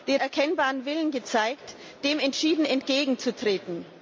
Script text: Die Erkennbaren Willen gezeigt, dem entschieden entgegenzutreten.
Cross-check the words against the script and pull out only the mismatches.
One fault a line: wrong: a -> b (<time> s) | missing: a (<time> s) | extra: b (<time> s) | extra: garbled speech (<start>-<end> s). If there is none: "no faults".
no faults